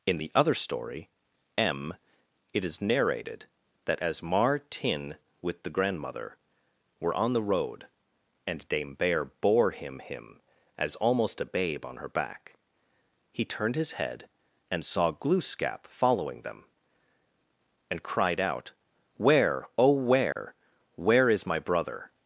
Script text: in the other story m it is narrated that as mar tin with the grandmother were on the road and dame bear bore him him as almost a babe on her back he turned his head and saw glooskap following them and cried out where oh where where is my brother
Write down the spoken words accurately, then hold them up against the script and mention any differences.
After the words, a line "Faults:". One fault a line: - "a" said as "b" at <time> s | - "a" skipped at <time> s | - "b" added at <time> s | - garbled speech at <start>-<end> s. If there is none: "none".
in the other story m it is narrated that as mar tin with the grandmother were on the road and dame bear bore him him as almost a babe on her back he turned his head and saw glooskap following them and cried out where oh where where is my brother
Faults:
none